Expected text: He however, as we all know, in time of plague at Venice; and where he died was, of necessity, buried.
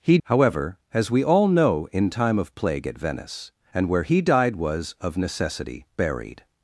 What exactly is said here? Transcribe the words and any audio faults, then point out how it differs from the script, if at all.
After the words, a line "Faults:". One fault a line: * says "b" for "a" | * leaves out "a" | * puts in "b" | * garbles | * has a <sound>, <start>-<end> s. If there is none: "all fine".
He however, as we all know, in time of plague at Venice; and where he died was, of necessity, buried.
Faults:
all fine